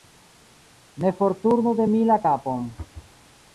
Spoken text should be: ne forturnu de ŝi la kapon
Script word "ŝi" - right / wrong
wrong